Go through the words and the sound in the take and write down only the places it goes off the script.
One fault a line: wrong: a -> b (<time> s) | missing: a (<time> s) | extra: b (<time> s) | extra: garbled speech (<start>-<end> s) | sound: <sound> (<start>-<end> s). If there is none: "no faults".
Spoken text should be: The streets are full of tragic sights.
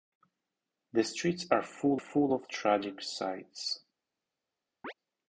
extra: full (1.9 s)
sound: chirp (4.8-4.9 s)